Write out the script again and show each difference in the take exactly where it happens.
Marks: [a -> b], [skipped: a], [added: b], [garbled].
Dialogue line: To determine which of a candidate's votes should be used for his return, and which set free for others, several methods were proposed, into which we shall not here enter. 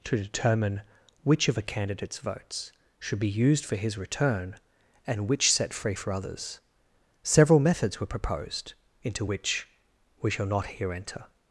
To determine which of a candidate's votes should be used for his return, and which set free for others, several methods were proposed, into which we shall not here enter.